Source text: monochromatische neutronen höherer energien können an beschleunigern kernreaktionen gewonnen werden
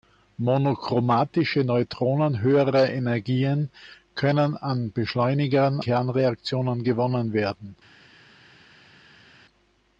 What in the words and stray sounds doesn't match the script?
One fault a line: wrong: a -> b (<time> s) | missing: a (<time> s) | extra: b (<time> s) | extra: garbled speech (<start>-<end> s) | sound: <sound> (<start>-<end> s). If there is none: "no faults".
no faults